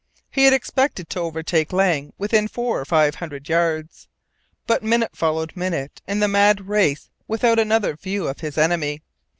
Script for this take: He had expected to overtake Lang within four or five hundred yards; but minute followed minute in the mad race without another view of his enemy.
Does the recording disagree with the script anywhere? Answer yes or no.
no